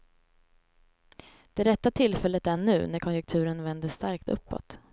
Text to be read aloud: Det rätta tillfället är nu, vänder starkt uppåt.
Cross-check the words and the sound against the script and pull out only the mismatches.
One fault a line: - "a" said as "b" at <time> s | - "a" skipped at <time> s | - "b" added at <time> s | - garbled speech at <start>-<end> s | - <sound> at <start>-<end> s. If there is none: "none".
- "när konjunkturen" added at 2.9 s